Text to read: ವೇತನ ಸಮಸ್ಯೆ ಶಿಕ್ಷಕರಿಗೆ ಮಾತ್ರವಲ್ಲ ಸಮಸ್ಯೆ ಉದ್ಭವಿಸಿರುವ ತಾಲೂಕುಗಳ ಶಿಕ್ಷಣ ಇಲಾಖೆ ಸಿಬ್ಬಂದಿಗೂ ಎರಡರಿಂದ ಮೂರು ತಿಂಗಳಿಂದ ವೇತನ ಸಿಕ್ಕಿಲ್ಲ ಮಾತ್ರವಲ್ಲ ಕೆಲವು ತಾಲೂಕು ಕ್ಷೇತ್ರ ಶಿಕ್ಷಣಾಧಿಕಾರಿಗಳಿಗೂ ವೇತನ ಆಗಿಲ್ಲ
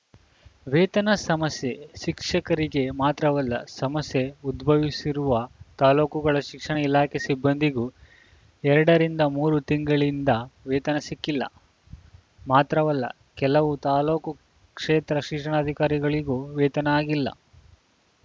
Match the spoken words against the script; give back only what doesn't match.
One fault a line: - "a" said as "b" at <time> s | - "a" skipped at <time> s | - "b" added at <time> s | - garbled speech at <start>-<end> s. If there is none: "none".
none